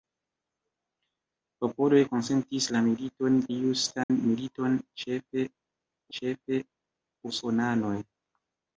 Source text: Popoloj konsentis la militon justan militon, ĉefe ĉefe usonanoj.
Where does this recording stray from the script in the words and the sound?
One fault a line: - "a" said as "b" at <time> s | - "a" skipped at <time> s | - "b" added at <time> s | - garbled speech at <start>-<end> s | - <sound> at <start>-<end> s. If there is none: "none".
- dropout at 4.0-4.1 s